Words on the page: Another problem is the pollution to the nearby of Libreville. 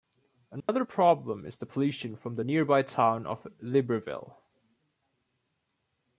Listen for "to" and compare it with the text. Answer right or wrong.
wrong